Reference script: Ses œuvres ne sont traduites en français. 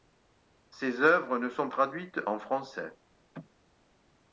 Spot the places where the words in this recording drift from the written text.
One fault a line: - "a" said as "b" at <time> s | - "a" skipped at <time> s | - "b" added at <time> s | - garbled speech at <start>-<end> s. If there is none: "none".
none